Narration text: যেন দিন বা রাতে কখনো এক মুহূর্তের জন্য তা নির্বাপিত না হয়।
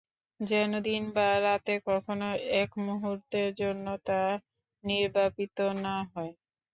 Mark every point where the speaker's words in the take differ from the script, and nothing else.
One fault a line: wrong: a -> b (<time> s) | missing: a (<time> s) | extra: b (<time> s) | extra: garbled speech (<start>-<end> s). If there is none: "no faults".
no faults